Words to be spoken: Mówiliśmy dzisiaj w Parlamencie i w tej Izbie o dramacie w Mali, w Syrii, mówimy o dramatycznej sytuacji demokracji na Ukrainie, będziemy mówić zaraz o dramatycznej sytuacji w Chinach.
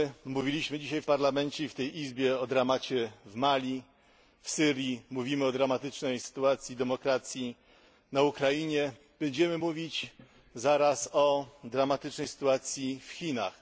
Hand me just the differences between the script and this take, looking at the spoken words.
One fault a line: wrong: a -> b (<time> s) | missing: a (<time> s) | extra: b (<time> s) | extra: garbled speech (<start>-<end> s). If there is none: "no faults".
no faults